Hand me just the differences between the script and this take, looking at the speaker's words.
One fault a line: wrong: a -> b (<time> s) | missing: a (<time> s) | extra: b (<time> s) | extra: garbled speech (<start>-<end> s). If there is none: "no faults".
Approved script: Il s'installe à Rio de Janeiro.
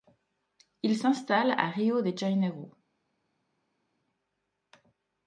no faults